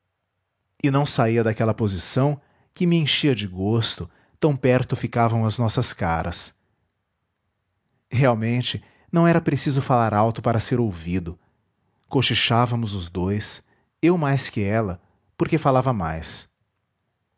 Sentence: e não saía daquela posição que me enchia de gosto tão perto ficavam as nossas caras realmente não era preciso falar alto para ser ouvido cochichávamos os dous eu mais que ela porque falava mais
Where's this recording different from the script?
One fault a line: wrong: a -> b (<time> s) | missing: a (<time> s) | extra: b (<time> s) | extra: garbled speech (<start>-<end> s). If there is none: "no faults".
no faults